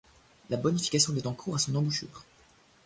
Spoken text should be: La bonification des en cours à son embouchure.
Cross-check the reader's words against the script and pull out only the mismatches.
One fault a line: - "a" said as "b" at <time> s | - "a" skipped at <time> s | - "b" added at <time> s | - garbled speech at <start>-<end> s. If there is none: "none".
none